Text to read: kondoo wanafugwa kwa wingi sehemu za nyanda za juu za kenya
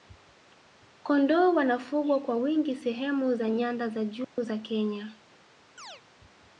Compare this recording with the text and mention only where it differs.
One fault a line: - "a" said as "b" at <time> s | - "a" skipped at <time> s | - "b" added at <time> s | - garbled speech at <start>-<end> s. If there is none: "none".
none